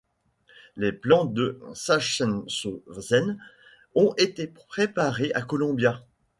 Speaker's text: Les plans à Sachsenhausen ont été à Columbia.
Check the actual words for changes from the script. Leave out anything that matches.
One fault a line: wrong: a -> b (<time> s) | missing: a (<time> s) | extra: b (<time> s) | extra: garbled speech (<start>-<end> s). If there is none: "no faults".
wrong: à -> de (1.2 s)
extra: préparés (4.5 s)